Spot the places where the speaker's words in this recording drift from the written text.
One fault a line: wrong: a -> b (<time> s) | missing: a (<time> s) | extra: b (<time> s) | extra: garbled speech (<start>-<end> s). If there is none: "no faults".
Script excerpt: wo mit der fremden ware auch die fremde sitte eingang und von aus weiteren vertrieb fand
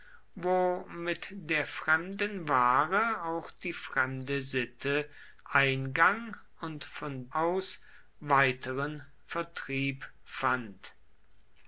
no faults